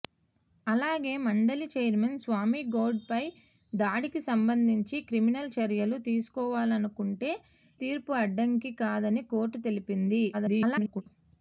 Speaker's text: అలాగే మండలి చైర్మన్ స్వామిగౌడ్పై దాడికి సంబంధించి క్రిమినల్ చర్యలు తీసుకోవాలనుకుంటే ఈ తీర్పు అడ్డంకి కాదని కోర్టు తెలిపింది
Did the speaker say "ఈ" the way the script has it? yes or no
no